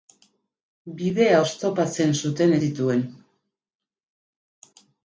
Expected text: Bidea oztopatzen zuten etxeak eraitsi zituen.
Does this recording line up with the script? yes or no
no